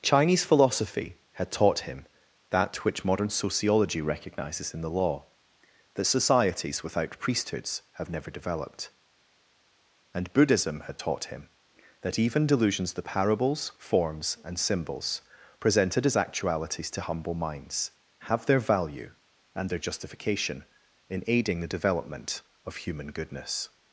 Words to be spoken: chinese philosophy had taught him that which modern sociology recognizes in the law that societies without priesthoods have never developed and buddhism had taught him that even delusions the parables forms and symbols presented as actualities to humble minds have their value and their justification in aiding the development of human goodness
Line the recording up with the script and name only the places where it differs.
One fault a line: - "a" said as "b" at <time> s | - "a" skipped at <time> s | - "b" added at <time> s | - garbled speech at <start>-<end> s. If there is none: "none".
none